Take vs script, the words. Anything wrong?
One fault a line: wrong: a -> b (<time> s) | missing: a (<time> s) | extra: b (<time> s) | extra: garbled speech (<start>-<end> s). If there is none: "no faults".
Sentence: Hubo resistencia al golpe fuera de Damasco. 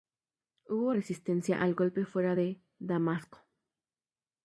no faults